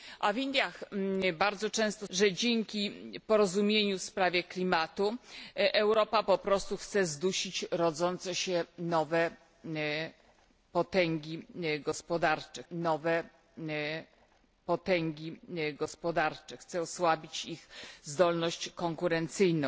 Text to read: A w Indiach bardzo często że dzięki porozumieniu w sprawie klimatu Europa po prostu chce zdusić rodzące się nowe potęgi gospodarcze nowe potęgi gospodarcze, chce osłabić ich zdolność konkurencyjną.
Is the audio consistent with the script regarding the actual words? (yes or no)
yes